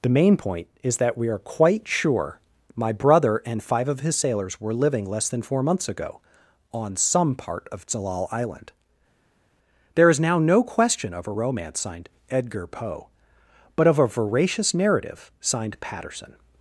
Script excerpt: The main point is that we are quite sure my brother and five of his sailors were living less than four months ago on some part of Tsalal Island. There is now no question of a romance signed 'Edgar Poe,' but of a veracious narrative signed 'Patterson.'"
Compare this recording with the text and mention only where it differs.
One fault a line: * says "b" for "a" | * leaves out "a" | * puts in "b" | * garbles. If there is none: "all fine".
all fine